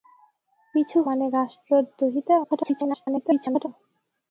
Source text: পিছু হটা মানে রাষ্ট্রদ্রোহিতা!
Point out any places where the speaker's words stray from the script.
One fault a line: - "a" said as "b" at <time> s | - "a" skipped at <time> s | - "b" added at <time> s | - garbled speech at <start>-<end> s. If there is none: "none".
- "হটা" skipped at 1.0 s
- garbled speech at 2.4-3.7 s